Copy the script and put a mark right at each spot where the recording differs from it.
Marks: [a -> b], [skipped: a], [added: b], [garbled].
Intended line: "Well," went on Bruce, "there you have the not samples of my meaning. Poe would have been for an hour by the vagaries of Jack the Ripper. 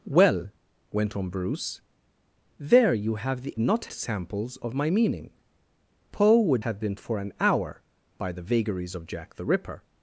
"Well," went on Bruce, "there you have the not samples of my meaning. Poe would have been for an hour by the vagaries of Jack the Ripper.